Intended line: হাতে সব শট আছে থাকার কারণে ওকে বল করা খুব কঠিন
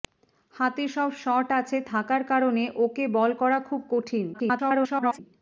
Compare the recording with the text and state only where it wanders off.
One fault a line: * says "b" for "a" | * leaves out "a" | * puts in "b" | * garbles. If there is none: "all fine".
* garbles